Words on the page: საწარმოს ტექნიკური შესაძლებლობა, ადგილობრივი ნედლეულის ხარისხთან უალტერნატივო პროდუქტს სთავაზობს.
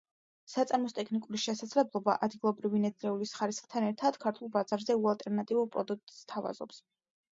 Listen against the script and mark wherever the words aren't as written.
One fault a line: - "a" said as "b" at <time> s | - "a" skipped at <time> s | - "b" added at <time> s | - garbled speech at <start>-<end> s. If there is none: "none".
- "ერთად ქართულ ბაზარზე" added at 3.9 s